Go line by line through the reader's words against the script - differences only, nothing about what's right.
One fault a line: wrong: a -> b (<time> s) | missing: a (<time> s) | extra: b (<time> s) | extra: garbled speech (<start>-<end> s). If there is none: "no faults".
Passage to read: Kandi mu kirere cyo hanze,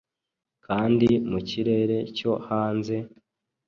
no faults